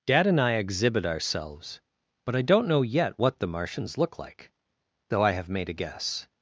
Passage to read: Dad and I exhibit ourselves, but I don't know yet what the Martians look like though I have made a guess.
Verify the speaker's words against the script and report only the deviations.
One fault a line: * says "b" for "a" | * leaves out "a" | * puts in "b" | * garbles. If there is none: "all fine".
all fine